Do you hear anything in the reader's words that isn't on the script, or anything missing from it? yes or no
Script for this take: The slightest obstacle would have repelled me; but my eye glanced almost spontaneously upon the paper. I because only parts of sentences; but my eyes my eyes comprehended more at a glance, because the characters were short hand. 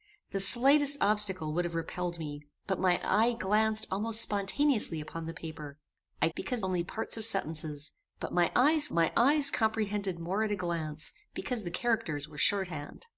no